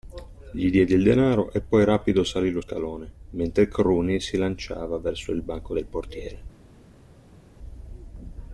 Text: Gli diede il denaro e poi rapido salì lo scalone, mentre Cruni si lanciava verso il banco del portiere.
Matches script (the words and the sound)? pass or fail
pass